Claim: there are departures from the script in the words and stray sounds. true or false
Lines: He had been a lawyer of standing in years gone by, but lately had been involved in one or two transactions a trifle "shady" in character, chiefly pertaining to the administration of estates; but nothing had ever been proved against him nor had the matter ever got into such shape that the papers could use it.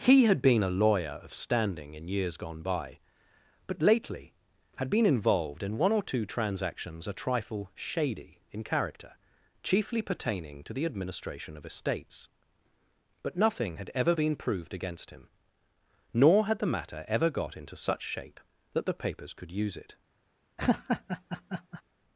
true